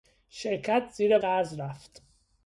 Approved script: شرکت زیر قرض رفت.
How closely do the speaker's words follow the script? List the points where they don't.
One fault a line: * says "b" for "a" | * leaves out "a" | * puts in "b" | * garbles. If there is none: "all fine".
all fine